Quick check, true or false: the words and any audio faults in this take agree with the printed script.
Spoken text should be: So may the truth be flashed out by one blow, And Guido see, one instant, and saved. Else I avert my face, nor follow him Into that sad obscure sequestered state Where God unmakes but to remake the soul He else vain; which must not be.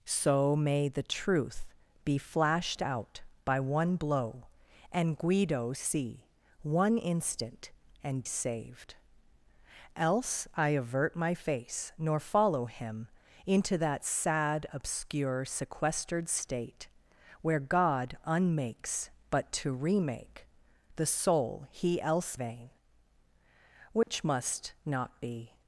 false